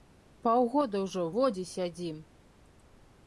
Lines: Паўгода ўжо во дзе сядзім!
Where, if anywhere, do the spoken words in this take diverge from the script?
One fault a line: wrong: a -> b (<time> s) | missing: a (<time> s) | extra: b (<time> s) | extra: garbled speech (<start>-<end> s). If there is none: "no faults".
no faults